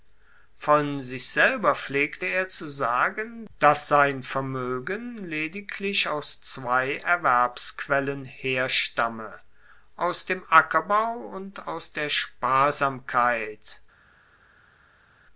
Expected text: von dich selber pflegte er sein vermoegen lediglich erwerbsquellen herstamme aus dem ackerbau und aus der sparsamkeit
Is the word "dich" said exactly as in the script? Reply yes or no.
no